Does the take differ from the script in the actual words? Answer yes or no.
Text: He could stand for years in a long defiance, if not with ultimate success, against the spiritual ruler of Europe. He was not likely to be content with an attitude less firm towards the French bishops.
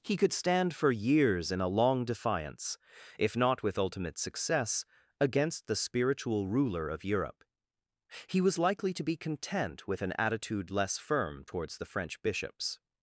yes